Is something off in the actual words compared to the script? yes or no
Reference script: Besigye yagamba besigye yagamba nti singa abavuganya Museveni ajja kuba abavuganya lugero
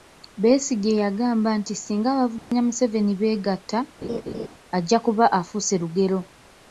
yes